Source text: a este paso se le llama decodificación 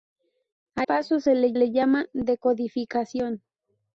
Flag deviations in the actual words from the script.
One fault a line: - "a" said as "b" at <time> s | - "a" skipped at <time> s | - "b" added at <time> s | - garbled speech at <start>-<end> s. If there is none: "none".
- "este" skipped at 0.9 s
- "le" added at 1.5 s